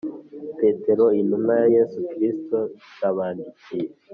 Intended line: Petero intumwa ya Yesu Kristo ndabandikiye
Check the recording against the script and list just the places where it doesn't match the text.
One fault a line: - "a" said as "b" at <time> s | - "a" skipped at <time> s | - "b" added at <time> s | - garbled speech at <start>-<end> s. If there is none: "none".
none